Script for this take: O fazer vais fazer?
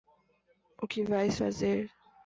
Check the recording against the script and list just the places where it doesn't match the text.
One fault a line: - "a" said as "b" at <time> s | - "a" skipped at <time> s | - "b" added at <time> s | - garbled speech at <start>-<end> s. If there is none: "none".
- "fazer" said as "que" at 0.8 s